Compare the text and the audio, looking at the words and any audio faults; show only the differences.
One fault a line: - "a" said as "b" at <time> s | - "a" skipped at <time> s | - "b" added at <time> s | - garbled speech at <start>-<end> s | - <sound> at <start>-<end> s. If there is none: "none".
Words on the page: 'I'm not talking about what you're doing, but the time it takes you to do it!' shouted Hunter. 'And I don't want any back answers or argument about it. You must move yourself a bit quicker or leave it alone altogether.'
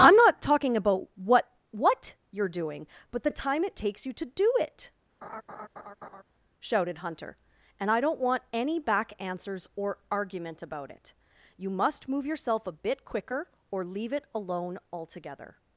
- "what" added at 1.7 s
- laugh at 5.2-6.2 s